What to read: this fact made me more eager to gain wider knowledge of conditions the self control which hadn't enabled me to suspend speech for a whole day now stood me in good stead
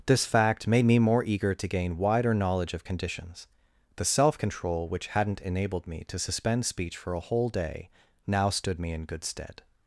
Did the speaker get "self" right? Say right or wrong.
right